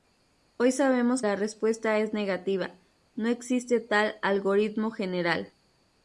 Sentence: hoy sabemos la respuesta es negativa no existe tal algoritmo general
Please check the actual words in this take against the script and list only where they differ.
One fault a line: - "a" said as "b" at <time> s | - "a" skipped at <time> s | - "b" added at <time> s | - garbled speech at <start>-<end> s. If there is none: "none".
none